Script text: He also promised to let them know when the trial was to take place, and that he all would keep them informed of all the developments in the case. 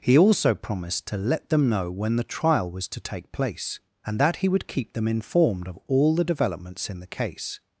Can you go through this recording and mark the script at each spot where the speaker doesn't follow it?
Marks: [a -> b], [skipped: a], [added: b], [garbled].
He also promised to let them know when the trial was to take place, and that he [skipped: all] would keep them informed of all the developments in the case.